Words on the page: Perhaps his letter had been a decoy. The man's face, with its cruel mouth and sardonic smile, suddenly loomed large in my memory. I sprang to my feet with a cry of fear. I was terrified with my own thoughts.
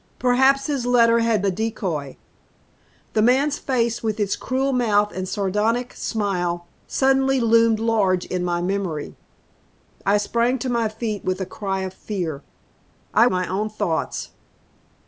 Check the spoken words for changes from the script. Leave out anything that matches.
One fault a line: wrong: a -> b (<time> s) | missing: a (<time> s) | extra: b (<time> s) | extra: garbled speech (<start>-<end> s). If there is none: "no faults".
missing: been (1.4 s)
missing: was terrified with (13.3 s)